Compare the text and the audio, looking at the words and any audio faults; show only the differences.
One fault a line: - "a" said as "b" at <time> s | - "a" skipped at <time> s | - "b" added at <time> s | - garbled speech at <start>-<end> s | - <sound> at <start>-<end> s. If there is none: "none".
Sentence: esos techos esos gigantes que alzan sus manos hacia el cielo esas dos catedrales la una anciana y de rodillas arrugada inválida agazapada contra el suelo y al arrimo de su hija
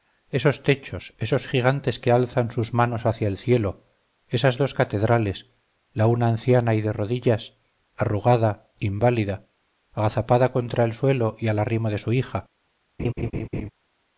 - laugh at 13.0-13.7 s